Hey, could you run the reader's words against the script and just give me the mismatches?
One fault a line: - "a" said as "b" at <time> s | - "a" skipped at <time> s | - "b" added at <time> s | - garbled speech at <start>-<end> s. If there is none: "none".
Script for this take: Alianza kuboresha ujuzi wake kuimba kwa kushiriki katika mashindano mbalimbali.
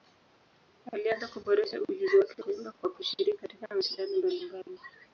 none